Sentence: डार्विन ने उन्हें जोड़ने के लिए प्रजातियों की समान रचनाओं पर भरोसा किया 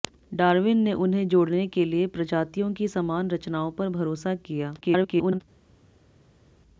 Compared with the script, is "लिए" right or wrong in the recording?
right